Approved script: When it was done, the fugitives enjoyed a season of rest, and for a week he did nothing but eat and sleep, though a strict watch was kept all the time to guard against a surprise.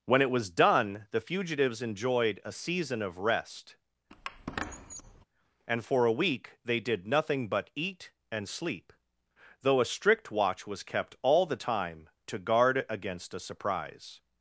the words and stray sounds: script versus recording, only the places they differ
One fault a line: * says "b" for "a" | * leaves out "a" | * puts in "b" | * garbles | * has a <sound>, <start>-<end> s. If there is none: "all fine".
* has a squeak, 4.1-5.3 s
* says "they" for "he"